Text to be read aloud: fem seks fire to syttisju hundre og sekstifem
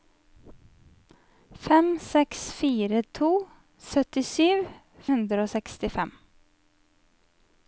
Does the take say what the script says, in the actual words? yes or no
yes